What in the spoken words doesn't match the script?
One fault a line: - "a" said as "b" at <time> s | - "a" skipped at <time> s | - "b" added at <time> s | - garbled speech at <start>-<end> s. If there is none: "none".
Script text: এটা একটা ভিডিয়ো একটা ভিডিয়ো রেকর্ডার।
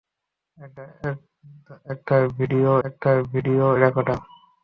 none